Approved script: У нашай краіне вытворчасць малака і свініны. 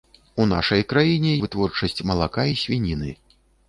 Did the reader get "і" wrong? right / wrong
right